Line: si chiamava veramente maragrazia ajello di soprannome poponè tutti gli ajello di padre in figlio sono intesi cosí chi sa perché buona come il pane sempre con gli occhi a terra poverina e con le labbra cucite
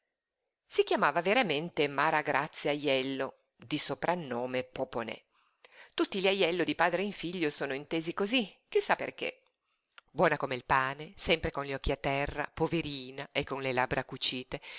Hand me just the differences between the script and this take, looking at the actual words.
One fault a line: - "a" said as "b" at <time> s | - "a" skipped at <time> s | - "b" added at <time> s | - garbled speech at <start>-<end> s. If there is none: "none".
none